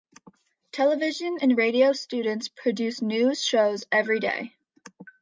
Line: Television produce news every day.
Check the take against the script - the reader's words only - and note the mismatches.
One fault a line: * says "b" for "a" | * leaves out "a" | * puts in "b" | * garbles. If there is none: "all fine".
* puts in "and radio students"
* puts in "shows"